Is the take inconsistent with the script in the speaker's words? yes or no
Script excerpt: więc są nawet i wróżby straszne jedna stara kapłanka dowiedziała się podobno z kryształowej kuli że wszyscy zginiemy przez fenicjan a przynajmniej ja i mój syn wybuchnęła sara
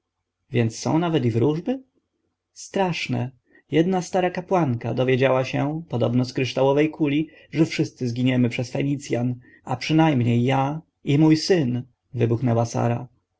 no